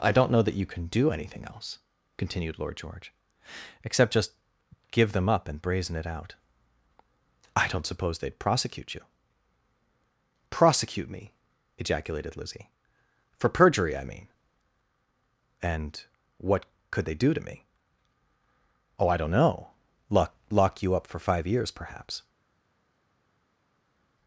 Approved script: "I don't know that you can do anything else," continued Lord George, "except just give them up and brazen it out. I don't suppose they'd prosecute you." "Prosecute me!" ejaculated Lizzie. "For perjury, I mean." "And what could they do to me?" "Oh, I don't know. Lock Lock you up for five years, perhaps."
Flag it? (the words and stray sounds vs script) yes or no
no